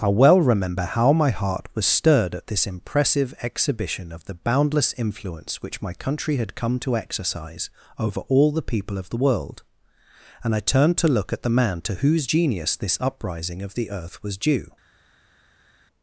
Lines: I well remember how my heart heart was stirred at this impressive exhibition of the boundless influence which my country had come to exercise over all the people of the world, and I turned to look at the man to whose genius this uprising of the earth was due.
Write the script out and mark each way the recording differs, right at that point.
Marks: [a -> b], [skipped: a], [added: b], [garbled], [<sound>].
I well remember how my heart [skipped: heart] was stirred at this impressive exhibition of the boundless influence which my country had come to exercise over all the people of the world, and I turned to look at the man to whose genius this uprising of the earth was due.